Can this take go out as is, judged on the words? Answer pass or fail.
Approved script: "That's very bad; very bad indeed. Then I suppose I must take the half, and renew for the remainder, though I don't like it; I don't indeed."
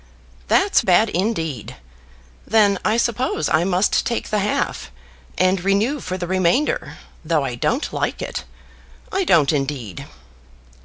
fail